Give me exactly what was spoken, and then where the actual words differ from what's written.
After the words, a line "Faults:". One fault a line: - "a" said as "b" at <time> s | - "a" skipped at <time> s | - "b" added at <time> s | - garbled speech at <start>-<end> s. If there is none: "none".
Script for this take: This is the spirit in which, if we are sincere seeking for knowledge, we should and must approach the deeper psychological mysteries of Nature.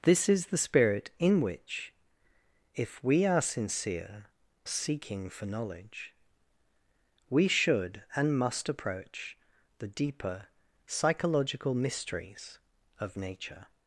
This is the spirit in which, if we are sincere seeking for knowledge, we should and must approach the deeper psychological mysteries of Nature.
Faults:
none